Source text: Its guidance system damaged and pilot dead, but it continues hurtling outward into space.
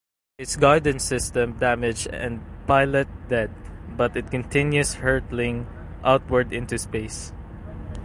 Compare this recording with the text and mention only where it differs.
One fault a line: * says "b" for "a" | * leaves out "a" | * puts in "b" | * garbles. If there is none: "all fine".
all fine